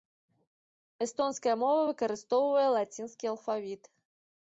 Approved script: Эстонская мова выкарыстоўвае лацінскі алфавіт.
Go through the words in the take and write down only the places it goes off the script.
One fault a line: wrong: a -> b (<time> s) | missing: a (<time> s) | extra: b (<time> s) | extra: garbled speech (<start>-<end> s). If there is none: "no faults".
no faults